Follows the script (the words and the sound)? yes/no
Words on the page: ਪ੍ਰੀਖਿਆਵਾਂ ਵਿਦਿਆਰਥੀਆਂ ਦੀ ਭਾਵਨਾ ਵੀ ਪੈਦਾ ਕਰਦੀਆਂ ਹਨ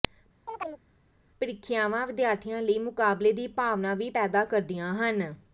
no